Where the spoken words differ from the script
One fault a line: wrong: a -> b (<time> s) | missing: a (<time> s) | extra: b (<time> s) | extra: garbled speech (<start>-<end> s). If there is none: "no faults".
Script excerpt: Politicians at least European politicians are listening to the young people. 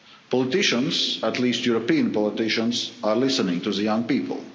no faults